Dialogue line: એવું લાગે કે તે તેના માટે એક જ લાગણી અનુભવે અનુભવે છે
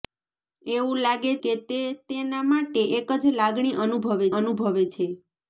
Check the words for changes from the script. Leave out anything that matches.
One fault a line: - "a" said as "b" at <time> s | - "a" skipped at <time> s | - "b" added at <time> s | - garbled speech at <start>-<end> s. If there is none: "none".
none